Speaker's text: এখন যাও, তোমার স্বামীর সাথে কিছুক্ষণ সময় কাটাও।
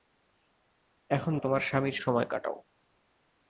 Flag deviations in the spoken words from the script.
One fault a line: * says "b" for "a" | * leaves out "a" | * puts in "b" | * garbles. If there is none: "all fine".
* leaves out "যাও"
* leaves out "সাথে কিছুক্ষণ"